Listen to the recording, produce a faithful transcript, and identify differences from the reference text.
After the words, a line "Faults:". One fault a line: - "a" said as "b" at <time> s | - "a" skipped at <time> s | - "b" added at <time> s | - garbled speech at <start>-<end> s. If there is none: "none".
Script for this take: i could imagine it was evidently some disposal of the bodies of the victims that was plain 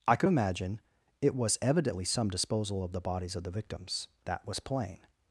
i could imagine it was evidently some disposal of the bodies of the victims that was plain
Faults:
none